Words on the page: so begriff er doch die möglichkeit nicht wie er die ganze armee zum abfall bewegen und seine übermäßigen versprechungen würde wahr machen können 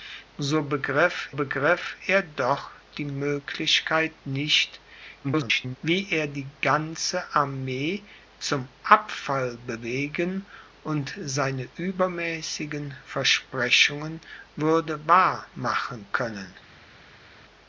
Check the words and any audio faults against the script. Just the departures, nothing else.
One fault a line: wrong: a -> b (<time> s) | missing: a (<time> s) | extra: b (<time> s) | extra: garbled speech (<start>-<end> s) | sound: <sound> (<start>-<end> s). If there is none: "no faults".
extra: begriff (1.3 s)
extra: garbled speech (5.2-5.8 s)